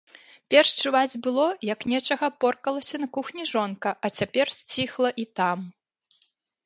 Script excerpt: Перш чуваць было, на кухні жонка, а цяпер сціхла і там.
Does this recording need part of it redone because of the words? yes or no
yes